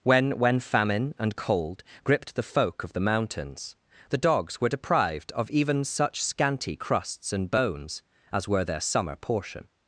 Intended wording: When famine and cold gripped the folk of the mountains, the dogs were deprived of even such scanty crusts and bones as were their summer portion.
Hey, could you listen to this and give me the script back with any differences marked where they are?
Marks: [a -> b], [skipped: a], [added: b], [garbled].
When [added: when] famine and cold gripped the folk of the mountains, the dogs were deprived of even such scanty crusts and bones as were their summer portion.